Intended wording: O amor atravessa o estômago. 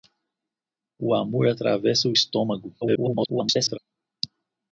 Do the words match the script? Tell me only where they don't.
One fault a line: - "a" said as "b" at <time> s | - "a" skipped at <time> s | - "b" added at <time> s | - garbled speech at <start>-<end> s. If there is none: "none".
- garbled speech at 2.8-3.8 s